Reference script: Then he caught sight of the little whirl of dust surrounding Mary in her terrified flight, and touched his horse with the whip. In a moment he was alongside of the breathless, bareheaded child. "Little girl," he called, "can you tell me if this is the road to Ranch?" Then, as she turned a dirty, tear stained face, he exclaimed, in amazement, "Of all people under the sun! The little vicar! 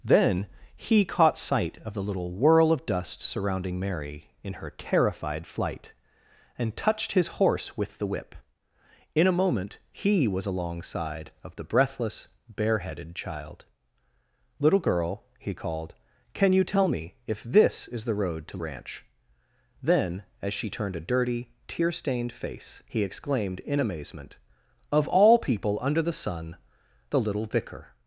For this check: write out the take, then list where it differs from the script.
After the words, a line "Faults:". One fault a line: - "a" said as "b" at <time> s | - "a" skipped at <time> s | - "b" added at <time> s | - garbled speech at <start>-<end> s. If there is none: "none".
Then he caught sight of the little whirl of dust surrounding Mary in her terrified flight, and touched his horse with the whip. In a moment he was alongside of the breathless, bareheaded child. "Little girl," he called, "can you tell me if this is the road to Ranch?" Then, as she turned a dirty, tear stained face, he exclaimed, in amazement, "Of all people under the sun! The little vicar!
Faults:
none